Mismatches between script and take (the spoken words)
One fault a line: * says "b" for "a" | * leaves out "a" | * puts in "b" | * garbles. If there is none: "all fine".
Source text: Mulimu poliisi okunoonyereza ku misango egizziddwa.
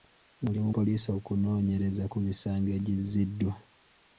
all fine